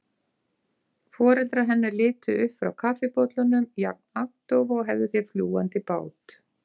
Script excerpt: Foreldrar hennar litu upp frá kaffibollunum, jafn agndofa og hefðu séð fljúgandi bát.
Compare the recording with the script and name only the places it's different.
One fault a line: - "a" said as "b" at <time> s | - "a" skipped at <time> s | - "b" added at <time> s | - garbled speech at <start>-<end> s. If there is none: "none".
none